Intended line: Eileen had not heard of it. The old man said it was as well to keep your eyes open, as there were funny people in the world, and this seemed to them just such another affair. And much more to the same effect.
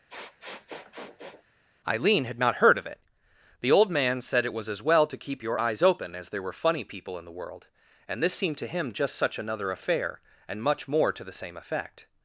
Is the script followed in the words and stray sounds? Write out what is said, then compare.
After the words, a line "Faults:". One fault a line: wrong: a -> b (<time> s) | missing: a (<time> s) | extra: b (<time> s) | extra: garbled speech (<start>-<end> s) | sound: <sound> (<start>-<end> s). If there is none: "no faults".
Eileen had not heard of it. The old man said it was as well to keep your eyes open, as there were funny people in the world, and this seemed to him just such another affair. And much more to the same effect.
Faults:
sound: sniff (0.1-1.4 s)
wrong: them -> him (8.7 s)